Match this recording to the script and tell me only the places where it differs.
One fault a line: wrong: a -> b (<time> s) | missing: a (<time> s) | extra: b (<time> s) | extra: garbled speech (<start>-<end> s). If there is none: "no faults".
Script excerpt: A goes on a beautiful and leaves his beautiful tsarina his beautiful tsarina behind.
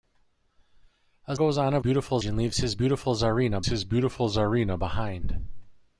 no faults